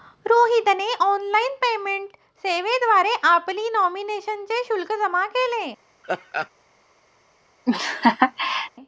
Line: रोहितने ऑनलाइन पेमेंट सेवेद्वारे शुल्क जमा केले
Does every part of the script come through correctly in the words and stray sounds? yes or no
no